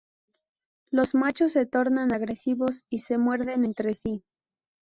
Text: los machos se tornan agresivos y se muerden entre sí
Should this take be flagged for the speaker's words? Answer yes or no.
no